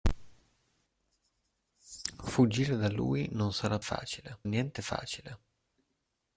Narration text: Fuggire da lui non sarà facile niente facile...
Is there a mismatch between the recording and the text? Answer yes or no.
no